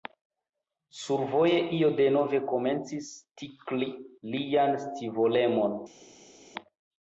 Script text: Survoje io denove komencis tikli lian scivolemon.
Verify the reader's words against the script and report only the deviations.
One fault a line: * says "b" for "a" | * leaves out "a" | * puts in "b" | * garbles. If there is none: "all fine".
all fine